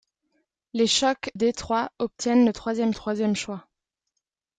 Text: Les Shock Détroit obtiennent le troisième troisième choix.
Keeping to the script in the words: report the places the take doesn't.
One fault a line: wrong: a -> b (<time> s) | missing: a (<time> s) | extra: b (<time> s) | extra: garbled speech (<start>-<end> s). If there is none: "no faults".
no faults